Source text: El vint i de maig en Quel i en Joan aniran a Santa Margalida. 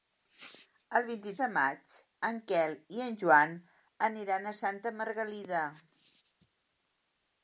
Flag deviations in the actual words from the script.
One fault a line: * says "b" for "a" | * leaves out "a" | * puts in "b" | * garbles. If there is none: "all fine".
all fine